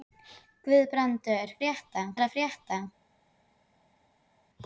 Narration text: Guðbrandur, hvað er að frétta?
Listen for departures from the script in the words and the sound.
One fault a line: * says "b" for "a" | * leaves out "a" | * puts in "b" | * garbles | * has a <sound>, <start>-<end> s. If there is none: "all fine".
* says "frétta" for "hvað"